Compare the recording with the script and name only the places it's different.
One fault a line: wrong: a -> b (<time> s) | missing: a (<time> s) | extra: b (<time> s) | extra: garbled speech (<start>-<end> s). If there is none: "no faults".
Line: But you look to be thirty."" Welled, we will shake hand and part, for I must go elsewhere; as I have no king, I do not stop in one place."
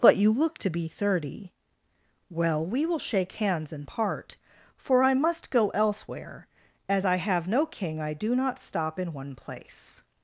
wrong: Welled -> Well (2.3 s)
wrong: hand -> hands (3.3 s)